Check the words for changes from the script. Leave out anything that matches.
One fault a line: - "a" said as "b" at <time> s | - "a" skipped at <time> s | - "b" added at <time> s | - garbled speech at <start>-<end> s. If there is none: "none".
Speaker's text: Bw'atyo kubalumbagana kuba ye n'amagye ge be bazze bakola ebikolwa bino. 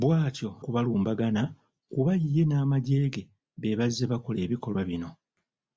none